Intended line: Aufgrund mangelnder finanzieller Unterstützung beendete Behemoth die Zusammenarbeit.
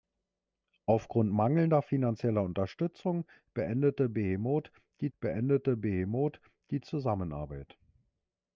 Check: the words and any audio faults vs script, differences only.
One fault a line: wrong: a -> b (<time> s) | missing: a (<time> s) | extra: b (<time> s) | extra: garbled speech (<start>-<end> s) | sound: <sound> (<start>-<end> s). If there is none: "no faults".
extra: beendete Behemoth die (5.2 s)